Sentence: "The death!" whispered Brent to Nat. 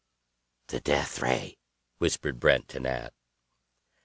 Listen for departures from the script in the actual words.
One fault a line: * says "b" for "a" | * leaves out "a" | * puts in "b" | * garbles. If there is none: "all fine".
* puts in "ray"